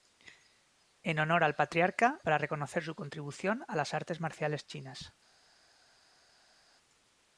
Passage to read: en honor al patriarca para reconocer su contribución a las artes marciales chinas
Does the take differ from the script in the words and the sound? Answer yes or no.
no